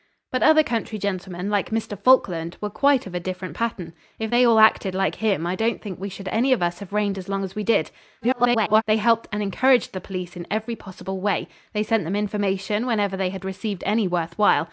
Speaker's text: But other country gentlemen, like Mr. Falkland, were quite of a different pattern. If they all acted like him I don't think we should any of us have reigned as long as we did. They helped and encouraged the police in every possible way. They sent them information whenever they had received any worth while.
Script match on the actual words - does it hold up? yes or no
no